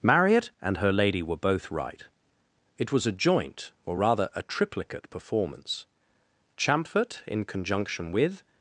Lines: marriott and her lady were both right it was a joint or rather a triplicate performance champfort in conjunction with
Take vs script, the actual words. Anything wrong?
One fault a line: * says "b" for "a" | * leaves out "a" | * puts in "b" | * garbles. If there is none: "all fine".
all fine